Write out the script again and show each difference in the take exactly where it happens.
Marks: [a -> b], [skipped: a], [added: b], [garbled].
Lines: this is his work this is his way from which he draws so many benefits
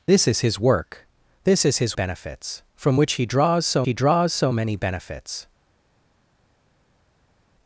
this is his work this is his [way -> benefits] from which he draws so [added: he draws so] many benefits